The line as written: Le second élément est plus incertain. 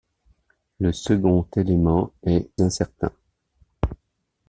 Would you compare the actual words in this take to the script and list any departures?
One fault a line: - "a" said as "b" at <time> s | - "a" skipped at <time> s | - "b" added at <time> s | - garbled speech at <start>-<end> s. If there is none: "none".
- "plus" skipped at 2.5 s